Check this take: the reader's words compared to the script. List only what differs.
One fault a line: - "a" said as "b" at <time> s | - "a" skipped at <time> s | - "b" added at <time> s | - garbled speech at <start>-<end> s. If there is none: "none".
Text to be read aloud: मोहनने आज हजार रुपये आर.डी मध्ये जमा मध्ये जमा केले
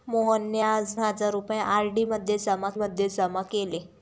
none